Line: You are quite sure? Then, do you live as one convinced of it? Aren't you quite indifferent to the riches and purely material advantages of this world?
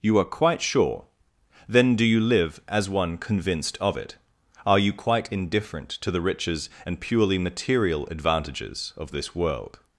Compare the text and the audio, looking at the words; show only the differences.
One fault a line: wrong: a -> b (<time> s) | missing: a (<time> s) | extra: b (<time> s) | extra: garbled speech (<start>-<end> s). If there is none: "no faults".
wrong: Aren't -> Are (4.7 s)